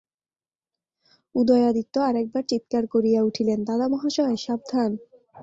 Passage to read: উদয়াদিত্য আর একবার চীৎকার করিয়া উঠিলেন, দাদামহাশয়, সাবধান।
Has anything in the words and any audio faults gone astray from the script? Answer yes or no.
no